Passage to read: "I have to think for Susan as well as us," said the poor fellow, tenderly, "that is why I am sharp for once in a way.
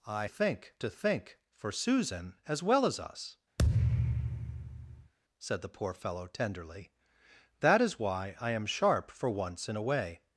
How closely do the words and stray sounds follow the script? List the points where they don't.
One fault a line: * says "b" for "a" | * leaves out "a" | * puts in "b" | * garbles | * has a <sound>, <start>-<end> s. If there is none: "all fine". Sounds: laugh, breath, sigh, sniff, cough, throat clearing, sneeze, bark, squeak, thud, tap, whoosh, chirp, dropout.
* says "think" for "have"
* has a thud, 3.6-5.1 s